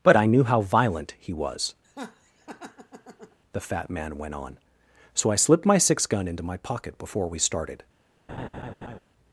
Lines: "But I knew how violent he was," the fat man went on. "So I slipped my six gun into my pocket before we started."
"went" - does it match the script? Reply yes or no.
yes